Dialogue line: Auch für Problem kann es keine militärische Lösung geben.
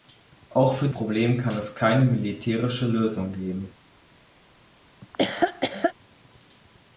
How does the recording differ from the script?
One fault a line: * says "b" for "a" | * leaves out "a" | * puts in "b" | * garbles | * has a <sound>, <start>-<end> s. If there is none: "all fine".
* has a laugh, 5.0-5.9 s